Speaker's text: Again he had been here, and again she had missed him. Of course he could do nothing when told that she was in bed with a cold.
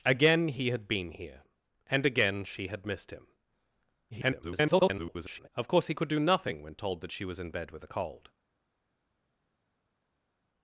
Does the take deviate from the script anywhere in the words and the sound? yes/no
yes